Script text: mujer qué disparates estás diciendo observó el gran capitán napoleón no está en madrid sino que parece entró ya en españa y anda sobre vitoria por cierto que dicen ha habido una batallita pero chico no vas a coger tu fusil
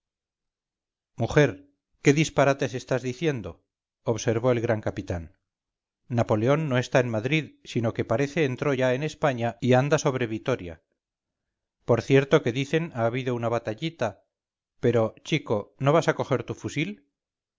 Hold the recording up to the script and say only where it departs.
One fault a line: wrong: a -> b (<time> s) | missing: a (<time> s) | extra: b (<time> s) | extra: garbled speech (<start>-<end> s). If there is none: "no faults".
no faults